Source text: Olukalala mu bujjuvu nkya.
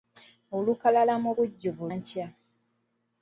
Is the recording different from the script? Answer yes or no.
no